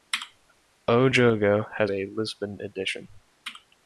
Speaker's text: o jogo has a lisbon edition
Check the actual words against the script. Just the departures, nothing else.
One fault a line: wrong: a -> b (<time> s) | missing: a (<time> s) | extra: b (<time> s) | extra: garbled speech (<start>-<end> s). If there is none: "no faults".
no faults